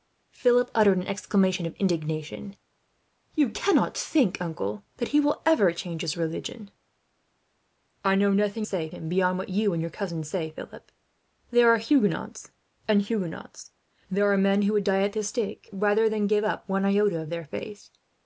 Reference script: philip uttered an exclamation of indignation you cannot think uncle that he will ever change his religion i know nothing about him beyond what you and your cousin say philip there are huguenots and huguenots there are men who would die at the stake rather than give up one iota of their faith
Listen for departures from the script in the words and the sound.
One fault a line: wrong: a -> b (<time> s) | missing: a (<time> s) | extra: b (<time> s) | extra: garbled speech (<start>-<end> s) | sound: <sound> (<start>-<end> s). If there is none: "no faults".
wrong: about -> say (8.6 s)